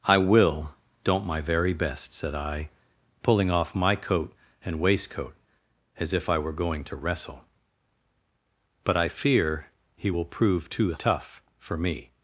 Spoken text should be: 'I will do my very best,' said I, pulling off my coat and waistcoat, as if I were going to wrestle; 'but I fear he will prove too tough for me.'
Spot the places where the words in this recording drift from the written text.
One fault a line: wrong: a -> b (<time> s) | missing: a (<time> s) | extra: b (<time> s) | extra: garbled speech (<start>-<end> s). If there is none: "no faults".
wrong: do -> don't (1.0 s)